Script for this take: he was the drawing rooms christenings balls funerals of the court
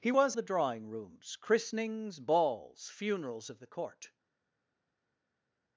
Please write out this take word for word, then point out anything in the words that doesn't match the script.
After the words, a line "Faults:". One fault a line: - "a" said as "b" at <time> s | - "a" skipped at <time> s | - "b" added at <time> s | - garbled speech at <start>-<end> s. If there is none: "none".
he was the drawing rooms christenings balls funerals of the court
Faults:
none